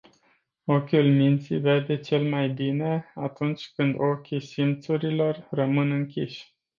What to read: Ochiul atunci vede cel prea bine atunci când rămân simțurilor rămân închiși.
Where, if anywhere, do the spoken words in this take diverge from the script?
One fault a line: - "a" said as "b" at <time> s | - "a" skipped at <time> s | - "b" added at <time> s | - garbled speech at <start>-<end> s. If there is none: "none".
- "atunci" said as "minții" at 1.1 s
- "prea" said as "mai" at 2.3 s
- "rămân" said as "ochii" at 4.0 s